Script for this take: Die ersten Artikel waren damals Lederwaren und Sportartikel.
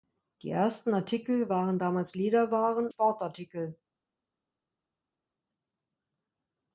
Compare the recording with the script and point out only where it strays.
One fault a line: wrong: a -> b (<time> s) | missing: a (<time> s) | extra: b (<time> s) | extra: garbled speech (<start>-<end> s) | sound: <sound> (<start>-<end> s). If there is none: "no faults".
missing: und (2.9 s)